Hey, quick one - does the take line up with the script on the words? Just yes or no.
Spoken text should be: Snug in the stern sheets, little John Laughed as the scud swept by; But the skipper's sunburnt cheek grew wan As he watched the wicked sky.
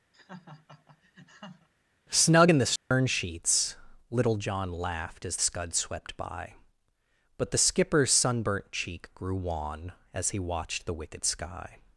no